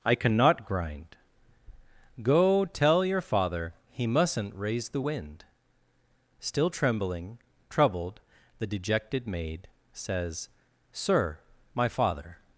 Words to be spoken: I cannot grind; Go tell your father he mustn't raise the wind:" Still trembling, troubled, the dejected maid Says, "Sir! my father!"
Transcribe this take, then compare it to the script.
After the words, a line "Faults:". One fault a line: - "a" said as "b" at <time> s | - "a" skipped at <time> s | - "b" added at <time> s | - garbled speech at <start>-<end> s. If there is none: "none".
I cannot grind; Go tell your father he mustn't raise the wind:" Still trembling, troubled, the dejected maid Says, "Sir! my father!"
Faults:
none